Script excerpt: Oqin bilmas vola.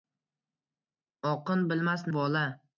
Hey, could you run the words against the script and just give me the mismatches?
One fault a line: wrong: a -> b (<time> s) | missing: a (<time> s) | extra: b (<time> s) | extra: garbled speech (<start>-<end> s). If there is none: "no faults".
no faults